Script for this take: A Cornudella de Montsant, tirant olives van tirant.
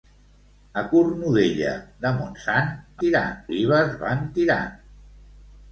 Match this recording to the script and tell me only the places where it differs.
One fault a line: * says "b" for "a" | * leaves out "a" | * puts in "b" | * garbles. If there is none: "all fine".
all fine